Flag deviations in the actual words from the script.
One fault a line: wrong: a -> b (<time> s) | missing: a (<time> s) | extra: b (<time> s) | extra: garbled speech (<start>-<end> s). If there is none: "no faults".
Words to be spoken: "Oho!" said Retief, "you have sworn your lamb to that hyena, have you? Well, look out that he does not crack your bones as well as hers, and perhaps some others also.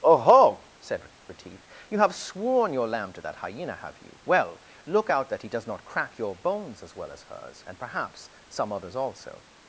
no faults